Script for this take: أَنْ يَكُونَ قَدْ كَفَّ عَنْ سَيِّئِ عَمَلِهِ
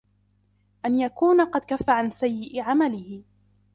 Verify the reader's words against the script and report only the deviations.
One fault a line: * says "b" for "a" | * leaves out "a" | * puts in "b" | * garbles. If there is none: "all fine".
all fine